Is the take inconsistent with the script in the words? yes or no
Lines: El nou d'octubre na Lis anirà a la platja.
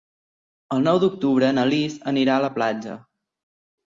no